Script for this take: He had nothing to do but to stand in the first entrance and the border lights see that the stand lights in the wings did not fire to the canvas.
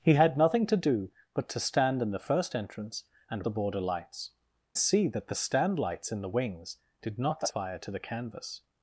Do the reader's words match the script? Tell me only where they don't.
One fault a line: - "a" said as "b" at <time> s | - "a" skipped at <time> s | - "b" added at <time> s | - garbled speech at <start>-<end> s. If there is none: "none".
none